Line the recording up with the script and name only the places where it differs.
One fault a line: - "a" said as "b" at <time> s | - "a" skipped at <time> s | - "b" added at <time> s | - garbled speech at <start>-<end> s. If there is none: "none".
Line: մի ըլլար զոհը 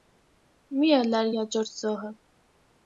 - "յաջորդ" added at 1.4 s